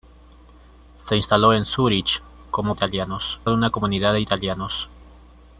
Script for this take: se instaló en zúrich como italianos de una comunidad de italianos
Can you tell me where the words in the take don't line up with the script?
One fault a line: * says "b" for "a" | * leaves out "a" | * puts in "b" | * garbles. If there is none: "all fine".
all fine